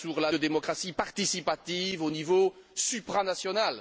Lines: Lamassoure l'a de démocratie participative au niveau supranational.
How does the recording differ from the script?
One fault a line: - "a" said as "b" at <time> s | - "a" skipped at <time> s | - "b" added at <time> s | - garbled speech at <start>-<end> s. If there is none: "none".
none